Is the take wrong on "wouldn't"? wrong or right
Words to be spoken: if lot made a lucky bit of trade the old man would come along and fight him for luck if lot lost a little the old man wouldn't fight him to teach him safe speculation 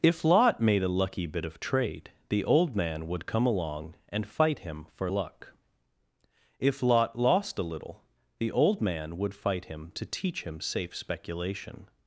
wrong